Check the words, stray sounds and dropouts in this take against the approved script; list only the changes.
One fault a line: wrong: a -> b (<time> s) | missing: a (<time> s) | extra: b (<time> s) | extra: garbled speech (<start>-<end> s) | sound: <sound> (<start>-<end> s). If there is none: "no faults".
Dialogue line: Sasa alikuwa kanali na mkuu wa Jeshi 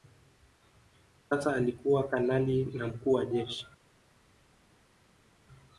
no faults